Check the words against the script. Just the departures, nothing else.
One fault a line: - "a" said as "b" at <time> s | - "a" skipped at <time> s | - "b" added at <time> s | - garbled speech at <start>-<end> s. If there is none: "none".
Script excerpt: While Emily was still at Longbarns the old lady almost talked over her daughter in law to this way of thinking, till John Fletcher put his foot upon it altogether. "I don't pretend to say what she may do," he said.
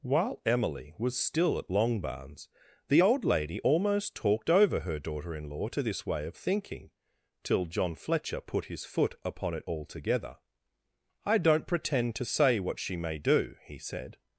none